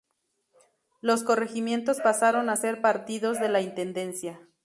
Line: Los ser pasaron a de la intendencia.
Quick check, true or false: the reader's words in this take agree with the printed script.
false